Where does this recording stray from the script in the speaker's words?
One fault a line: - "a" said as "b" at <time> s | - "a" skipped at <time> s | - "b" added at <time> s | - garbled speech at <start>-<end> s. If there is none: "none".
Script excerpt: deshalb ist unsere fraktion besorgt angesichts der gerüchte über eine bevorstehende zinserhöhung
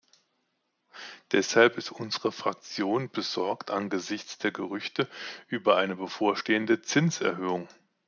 none